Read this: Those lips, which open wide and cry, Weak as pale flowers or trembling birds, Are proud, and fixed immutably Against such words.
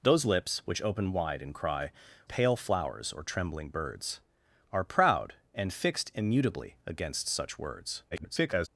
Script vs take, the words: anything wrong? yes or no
yes